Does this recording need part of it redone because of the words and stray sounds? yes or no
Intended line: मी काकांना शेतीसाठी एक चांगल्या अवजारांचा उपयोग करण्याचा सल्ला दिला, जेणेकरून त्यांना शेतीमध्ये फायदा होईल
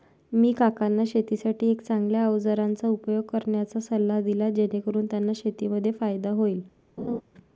yes